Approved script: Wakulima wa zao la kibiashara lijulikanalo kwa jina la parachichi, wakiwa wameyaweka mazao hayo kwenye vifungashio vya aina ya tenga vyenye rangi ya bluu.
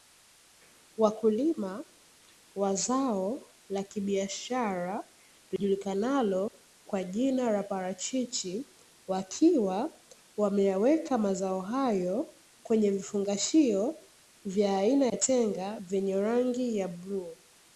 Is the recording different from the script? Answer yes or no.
no